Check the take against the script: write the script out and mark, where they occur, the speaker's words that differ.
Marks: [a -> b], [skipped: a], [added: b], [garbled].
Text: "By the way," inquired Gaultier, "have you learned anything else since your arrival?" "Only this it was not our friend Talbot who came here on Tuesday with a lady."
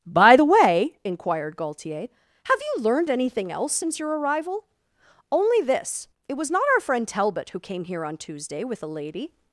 "By the way," inquired Gaultier, "have you learned anything else since your arrival?" "Only this it was not our friend Talbot who came here on Tuesday with a lady."